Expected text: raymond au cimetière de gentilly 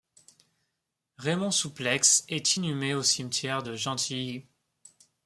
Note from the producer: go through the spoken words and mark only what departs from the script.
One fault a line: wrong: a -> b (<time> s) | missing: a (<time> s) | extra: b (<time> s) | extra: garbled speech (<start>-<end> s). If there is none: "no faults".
extra: souplex est inhumé (1.5 s)